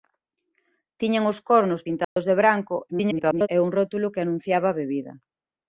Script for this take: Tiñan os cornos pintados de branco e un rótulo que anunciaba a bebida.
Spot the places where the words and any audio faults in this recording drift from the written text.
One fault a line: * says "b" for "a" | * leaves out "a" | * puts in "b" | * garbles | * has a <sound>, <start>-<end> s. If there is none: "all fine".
* has a dropout, 2.0-2.2 s
* garbles